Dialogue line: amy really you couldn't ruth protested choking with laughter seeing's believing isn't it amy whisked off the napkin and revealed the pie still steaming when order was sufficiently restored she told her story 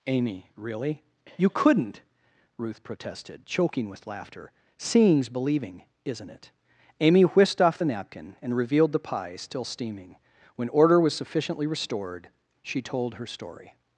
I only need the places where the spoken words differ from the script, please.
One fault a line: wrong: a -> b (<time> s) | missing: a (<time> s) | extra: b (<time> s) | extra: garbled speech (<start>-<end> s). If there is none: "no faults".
no faults